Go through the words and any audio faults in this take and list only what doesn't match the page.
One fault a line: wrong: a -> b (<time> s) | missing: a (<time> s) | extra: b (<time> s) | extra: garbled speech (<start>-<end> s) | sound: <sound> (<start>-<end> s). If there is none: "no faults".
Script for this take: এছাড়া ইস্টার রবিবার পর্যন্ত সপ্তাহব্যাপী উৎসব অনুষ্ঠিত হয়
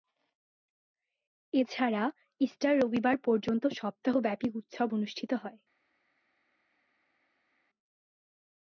no faults